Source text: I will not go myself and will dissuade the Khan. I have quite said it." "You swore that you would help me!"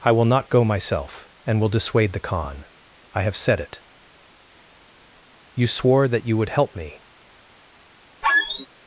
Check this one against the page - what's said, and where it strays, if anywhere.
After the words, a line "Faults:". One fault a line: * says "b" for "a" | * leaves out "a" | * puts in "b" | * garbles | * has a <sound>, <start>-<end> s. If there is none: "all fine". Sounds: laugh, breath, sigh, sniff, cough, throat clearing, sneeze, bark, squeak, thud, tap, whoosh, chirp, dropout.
I will not go myself and will dissuade the Khan. I have said it." "You swore that you would help me!"
Faults:
* leaves out "quite"
* has a squeak, 8.2-8.7 s